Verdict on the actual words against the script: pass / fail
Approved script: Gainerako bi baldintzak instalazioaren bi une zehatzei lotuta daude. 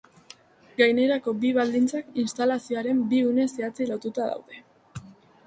pass